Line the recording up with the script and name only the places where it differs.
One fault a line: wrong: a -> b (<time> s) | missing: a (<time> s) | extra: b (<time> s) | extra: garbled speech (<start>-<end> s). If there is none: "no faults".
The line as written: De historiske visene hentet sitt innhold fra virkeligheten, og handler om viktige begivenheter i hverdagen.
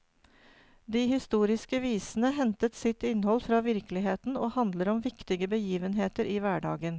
no faults